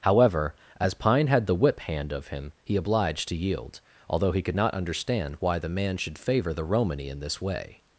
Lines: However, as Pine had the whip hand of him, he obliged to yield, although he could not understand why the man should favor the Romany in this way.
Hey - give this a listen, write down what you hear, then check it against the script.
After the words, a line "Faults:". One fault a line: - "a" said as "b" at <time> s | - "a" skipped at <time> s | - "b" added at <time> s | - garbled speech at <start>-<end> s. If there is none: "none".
However, as Pine had the whip hand of him, he obliged to yield, although he could not understand why the man should favor the Romany in this way.
Faults:
none